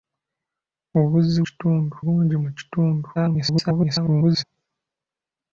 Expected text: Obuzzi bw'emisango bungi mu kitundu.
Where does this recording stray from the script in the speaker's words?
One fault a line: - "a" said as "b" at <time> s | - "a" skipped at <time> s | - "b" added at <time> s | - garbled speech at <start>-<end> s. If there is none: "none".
- "bw'emisango" said as "kitundu" at 1.5 s
- garbled speech at 3.1-4.4 s